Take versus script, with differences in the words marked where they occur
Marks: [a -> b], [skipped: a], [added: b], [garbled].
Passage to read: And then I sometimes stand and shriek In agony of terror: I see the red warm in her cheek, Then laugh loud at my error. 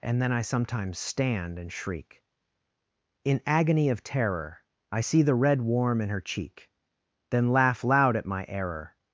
And then I sometimes stand and shriek In agony of terror: I see the red warm in her cheek, Then laugh loud at my error.